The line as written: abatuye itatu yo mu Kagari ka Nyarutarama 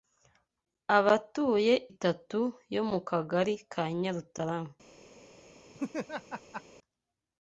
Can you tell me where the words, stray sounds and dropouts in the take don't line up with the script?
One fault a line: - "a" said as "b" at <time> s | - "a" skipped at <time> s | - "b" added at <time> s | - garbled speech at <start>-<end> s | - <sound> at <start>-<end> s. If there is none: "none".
- laugh at 5.7-6.6 s